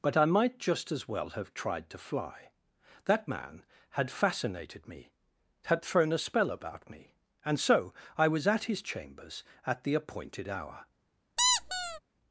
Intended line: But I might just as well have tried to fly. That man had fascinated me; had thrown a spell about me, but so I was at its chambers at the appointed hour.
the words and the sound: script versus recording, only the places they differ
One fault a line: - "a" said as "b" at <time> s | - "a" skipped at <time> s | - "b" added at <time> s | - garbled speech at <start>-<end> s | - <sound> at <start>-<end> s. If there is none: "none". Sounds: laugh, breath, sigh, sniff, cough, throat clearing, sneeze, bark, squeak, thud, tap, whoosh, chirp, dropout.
- "but" said as "and" at 7.5 s
- "its" said as "his" at 8.6 s
- squeak at 11.4-12.0 s